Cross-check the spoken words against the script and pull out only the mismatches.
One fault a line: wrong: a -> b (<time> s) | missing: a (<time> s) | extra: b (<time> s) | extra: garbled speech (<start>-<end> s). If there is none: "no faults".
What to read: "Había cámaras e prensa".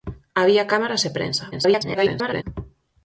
extra: garbled speech (1.5-2.4 s)